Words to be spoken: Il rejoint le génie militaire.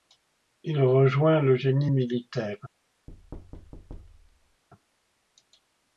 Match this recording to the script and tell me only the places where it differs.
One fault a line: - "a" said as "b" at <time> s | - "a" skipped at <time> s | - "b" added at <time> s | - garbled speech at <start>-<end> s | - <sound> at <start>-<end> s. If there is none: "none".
- thud at 3.1-4.6 s